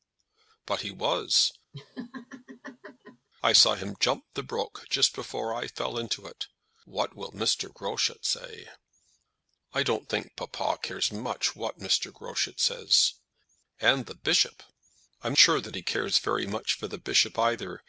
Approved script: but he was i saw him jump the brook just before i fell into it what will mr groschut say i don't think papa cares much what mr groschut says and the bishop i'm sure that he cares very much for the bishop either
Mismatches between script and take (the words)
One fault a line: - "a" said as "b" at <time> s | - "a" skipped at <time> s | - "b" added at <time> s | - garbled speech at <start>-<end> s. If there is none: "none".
none